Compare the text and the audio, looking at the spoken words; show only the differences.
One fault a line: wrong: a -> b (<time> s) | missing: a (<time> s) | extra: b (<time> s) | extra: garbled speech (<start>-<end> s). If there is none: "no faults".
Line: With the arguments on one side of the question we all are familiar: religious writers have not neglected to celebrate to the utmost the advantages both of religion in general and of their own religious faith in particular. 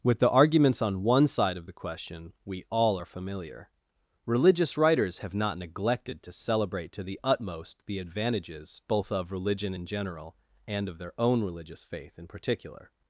no faults